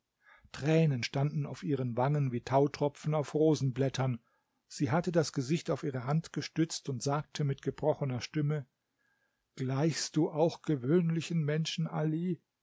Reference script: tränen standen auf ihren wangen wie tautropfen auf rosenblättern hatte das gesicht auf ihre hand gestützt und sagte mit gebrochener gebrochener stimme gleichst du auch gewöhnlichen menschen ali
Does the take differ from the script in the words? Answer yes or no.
yes